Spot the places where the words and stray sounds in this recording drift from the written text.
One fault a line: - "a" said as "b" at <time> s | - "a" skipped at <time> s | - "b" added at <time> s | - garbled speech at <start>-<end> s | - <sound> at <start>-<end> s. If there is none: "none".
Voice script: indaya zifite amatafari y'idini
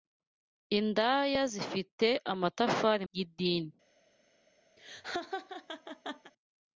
- laugh at 4.8-6.3 s